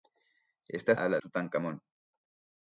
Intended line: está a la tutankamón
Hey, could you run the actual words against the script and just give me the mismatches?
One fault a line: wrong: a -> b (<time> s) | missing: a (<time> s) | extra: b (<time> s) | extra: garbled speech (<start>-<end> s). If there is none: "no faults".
no faults